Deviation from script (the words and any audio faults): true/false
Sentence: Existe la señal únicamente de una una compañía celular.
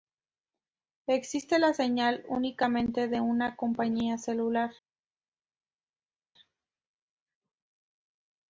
true